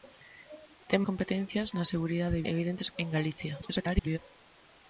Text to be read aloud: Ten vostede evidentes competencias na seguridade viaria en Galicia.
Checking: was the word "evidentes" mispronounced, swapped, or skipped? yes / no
yes